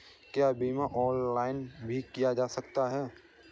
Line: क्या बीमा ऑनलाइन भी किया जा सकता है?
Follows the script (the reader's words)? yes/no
yes